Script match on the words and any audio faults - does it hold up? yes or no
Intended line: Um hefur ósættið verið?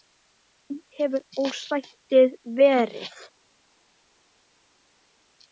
yes